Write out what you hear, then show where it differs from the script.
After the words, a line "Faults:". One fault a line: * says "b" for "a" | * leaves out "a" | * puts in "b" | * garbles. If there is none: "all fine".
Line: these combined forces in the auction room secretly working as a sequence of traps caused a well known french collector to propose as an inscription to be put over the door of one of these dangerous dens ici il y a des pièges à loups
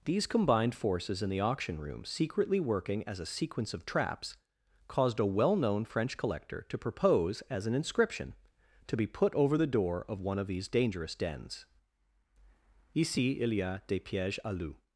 these combined forces in the auction room secretly working as a sequence of traps caused a well known french collector to propose as an inscription to be put over the door of one of these dangerous dens ici il y a des pièges à loups
Faults:
all fine